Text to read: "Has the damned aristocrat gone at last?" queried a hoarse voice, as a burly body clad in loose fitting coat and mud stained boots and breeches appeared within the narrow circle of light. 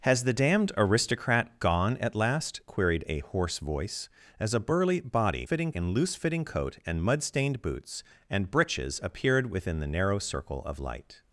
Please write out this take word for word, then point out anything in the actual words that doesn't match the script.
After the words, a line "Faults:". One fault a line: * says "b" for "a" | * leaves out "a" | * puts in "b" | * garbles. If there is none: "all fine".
"Has the damned aristocrat gone at last?" queried a hoarse voice, as a burly body fitting in loose fitting coat and mud stained boots and breeches appeared within the narrow circle of light.
Faults:
* says "fitting" for "clad"